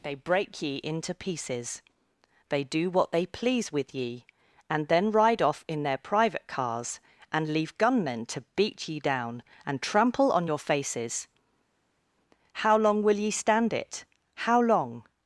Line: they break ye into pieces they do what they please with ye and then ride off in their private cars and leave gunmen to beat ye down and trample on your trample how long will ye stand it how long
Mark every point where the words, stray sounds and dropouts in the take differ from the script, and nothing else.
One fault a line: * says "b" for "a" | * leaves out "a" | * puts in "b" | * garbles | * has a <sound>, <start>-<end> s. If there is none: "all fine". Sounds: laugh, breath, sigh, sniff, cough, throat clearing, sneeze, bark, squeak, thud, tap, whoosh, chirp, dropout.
* says "faces" for "trample"